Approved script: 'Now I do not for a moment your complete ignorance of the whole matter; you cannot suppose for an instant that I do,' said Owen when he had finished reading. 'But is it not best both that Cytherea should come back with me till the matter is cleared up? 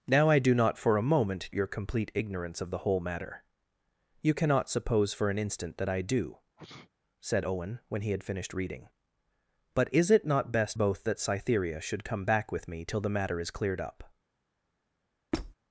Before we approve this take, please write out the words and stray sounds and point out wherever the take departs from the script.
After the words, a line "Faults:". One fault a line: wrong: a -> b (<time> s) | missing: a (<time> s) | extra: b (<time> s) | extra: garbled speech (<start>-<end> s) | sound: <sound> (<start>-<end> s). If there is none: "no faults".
'Now I do not for a moment your complete ignorance of the whole matter; you cannot suppose for an instant that I do,' said Owen when he had finished reading. 'But is it not best both that Cytherea should come back with me till the matter is cleared up?
Faults:
sound: sneeze (6.6-6.9 s)
sound: squeak (15.3-15.5 s)